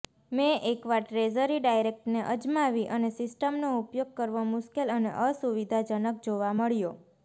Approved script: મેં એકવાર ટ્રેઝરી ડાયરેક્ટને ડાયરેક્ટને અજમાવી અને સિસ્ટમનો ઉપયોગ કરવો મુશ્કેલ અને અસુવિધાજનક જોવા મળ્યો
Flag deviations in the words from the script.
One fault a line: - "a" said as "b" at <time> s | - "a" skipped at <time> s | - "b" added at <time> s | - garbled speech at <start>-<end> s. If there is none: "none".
- "ડાયરેક્ટને" skipped at 2.2 s